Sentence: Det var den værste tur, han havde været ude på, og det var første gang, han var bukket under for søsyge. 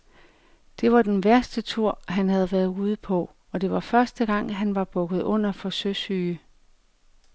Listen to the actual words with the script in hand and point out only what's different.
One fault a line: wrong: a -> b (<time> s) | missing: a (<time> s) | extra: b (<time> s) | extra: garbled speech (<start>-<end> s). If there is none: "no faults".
no faults